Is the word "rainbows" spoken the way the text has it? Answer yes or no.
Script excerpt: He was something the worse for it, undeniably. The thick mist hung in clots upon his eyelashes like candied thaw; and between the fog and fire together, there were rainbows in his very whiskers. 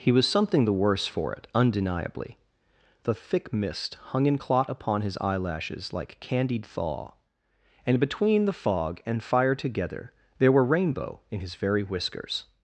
no